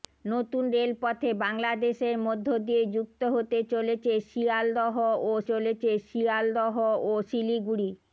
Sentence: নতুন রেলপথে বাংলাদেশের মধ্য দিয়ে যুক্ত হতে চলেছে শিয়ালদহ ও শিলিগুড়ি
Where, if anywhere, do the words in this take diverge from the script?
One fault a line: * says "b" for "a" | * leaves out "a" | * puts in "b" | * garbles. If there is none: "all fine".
* puts in "চলেছে শিয়ালদহ ও"